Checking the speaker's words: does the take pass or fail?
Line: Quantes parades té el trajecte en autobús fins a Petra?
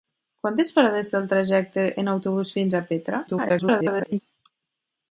fail